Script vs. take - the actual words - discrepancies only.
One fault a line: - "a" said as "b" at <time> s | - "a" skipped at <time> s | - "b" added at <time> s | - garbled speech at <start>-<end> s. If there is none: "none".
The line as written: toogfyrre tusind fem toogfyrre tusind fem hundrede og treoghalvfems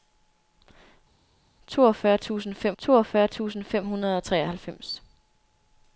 none